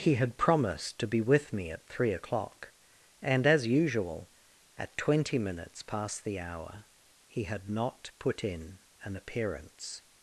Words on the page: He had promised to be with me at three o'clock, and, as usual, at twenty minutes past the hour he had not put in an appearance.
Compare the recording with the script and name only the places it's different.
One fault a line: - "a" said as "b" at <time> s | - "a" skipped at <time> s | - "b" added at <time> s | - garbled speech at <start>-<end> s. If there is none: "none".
none